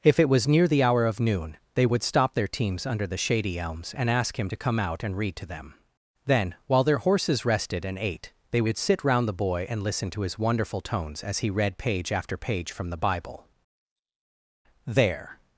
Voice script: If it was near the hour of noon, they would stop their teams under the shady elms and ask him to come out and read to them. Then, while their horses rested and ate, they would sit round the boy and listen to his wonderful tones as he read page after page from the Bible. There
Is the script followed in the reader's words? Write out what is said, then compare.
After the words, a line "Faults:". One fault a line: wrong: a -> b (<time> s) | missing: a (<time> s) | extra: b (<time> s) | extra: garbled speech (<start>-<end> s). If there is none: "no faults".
If it was near the hour of noon, they would stop their teams under the shady elms and ask him to come out and read to them. Then, while their horses rested and ate, they would sit round the boy and listen to his wonderful tones as he read page after page from the Bible. There
Faults:
no faults